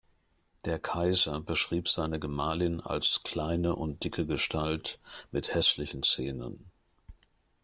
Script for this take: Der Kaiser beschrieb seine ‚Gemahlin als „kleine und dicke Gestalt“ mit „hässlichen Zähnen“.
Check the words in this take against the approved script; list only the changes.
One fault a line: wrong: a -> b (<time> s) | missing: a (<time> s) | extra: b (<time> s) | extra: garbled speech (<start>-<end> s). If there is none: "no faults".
no faults